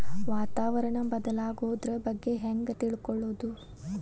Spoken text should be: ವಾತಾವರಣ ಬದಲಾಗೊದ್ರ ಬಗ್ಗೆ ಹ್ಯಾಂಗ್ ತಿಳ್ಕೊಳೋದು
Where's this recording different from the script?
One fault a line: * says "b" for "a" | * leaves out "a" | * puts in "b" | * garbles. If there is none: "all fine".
all fine